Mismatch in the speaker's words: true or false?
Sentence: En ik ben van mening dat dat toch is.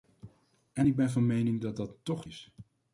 false